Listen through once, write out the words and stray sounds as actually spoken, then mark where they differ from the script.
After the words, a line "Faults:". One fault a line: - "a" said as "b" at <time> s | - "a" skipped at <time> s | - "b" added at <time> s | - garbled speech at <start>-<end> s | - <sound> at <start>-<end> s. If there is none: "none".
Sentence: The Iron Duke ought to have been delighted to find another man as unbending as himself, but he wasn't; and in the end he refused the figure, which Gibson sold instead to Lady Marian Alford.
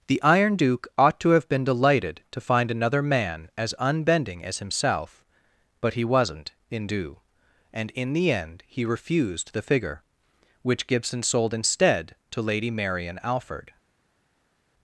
The Iron Duke ought to have been delighted to find another man as unbending as himself, but he wasn't; in due and in the end he refused the figure, which Gibson sold instead to Lady Marian Alford.
Faults:
- "in due" added at 6.7 s